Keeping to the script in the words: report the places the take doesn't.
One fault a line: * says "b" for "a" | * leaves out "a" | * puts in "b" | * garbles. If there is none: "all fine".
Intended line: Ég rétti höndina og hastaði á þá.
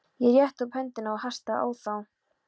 * puts in "upp"